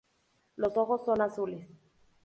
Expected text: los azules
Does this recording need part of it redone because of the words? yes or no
yes